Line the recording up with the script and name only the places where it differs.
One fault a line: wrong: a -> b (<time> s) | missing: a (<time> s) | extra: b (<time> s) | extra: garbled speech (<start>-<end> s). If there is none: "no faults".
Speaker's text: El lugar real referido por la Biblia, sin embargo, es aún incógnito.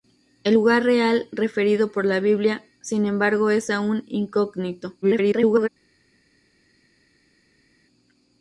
extra: garbled speech (5.0-5.7 s)